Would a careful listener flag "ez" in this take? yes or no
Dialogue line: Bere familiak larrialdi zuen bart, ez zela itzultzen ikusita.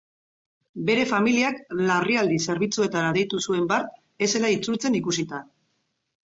no